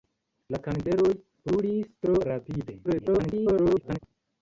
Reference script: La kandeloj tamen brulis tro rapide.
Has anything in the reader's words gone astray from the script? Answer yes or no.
yes